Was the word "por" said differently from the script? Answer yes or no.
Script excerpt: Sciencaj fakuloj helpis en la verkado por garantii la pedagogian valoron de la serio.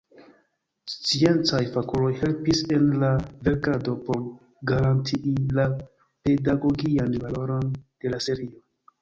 no